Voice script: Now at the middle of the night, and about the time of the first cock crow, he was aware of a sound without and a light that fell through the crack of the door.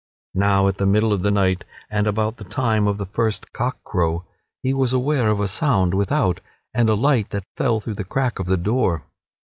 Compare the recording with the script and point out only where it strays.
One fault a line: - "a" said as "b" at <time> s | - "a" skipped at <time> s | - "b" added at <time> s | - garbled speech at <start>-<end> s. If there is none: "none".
none